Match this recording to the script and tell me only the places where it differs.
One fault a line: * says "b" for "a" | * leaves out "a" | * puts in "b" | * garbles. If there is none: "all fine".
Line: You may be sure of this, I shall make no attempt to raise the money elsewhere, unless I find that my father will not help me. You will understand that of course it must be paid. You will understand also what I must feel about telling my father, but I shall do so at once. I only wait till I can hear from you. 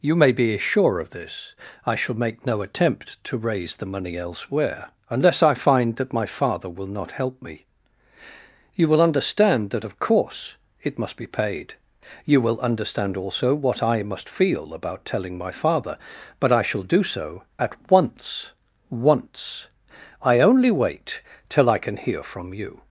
* puts in "once"